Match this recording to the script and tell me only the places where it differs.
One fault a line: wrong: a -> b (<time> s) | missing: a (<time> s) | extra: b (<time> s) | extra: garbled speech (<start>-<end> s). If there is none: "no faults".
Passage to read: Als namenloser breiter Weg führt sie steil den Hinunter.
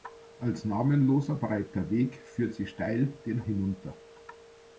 no faults